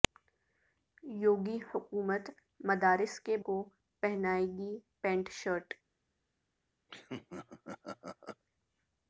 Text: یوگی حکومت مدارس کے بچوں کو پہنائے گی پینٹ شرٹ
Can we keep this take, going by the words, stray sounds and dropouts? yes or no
no